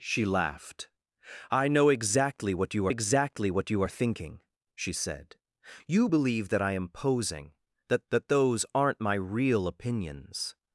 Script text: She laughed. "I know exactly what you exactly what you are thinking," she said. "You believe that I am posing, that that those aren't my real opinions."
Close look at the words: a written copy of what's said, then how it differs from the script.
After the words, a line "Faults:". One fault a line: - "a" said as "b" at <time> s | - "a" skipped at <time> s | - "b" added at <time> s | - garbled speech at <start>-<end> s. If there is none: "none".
She laughed. "I know exactly what you exactly what you are thinking," she said. "You believe that I am posing, that that those aren't my real opinions."
Faults:
none